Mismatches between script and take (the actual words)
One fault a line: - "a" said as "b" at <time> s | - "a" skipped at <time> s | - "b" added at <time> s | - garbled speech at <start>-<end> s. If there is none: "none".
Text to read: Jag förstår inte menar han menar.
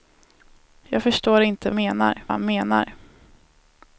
none